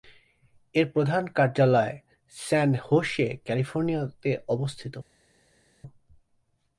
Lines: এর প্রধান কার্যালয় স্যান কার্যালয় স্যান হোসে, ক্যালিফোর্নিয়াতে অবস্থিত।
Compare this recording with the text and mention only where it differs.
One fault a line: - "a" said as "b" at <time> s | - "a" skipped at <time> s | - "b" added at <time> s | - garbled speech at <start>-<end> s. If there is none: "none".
- "কার্যালয় স্যান" skipped at 2.7 s